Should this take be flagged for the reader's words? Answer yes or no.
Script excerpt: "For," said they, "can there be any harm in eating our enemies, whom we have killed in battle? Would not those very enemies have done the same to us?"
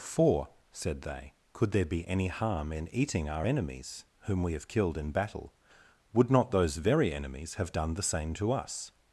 yes